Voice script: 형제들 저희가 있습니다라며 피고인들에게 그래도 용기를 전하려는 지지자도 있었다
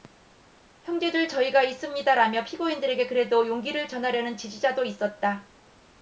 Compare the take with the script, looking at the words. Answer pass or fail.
pass